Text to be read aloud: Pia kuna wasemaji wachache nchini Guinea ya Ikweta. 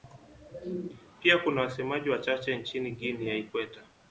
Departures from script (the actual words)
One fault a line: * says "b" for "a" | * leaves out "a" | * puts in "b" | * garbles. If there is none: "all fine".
all fine